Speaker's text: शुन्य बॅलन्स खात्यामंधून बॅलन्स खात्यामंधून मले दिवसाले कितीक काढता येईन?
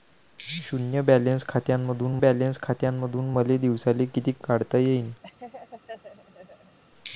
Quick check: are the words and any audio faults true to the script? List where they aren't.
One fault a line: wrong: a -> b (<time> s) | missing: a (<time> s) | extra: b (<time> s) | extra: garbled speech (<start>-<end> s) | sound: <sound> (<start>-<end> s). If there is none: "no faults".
sound: laugh (5.2-6.8 s)